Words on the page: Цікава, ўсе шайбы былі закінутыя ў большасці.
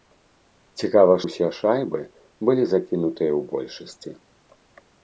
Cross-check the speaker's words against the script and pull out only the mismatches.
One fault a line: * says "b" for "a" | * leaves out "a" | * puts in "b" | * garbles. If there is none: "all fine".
all fine